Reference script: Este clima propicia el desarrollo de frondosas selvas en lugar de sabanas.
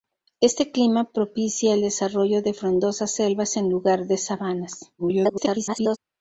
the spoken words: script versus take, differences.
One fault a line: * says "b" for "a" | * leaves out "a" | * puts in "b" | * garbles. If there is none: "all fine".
* garbles